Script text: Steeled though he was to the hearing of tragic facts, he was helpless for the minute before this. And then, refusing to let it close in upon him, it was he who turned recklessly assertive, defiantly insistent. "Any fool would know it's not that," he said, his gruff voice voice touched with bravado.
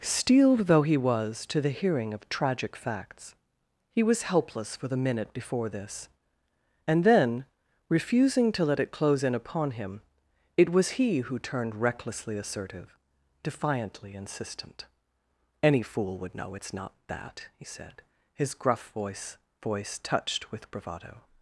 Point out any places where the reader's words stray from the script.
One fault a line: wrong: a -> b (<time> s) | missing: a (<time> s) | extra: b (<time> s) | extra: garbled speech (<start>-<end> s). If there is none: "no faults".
no faults